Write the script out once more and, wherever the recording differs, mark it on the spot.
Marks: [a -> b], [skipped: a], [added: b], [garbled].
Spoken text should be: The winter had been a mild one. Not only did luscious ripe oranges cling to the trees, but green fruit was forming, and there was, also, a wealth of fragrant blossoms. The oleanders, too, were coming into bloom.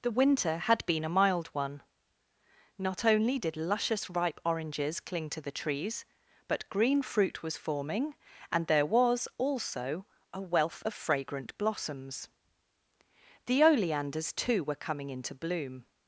The winter had been a mild one. Not only did luscious ripe oranges cling to the trees, but green fruit was forming, and there was, also, a wealth of fragrant blossoms. The oleanders, too, were coming into bloom.